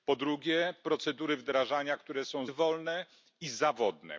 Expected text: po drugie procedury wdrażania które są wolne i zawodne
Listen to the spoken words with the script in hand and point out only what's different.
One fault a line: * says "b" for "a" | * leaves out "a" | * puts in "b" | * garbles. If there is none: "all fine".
all fine